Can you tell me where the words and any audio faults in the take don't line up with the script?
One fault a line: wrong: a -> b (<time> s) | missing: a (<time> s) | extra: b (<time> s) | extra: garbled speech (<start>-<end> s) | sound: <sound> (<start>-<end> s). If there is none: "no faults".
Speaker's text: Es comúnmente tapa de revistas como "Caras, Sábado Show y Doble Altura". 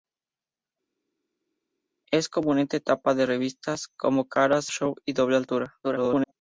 missing: Sábado (4.7 s)
extra: garbled speech (5.8-6.3 s)